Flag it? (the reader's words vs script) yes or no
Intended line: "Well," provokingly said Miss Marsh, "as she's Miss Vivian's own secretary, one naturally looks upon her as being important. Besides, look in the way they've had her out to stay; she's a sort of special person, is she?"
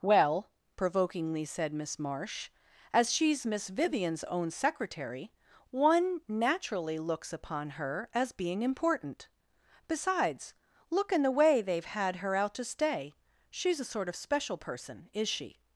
no